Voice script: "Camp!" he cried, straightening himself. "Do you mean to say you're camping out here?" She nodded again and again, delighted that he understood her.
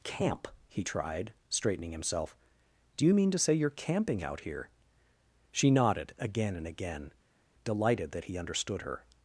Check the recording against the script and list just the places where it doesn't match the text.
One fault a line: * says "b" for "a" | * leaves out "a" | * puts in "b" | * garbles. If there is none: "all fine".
* says "tried" for "cried"